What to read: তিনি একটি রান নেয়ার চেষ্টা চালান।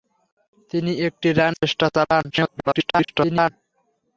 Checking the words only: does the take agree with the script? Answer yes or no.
no